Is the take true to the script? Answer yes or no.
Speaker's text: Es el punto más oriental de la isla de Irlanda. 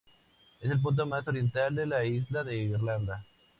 yes